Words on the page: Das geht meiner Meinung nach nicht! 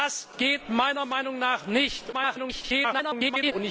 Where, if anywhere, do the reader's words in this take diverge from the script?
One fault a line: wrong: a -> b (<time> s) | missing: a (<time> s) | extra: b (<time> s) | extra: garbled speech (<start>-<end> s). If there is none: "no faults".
extra: garbled speech (2.1-3.5 s)